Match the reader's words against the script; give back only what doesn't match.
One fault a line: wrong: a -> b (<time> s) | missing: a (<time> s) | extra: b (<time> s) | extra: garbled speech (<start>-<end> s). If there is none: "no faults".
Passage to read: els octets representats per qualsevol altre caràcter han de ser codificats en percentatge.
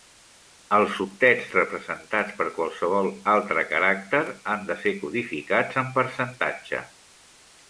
no faults